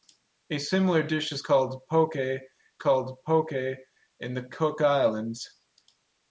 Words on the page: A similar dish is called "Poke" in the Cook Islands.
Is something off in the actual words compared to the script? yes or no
yes